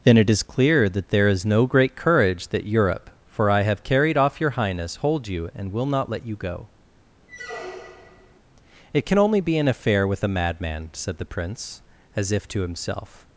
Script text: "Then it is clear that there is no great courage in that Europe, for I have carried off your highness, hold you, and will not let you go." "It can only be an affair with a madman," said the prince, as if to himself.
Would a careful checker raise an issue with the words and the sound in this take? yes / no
yes